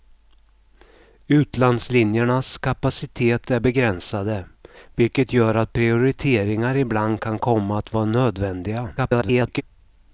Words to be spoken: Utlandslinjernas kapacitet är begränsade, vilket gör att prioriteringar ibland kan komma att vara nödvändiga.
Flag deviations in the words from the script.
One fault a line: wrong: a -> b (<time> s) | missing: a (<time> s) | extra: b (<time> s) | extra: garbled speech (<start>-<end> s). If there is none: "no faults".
extra: garbled speech (9.0-9.6 s)